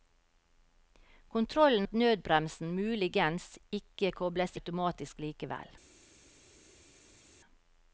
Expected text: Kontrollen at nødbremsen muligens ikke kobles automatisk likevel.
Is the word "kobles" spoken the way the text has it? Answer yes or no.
yes